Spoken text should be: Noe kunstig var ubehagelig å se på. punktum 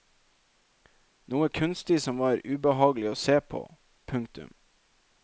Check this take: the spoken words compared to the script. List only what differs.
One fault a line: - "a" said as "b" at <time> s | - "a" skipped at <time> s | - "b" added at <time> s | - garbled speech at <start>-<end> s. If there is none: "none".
- "som" added at 2.0 s